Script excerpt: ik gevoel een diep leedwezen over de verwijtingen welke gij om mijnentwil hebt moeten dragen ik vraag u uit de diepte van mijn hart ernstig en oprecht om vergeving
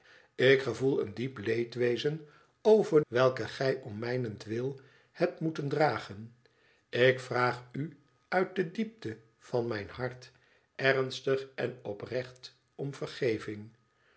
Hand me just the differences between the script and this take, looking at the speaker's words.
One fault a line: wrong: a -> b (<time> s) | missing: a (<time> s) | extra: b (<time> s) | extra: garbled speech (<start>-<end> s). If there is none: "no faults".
missing: de verwijtingen (3.0 s)